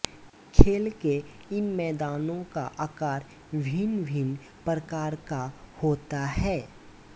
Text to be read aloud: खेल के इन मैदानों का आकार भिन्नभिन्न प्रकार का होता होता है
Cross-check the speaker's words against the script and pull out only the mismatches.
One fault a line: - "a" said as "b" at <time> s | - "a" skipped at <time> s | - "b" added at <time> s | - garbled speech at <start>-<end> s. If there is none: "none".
- "होता" skipped at 6.2 s